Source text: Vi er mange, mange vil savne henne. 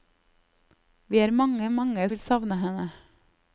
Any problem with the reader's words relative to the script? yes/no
no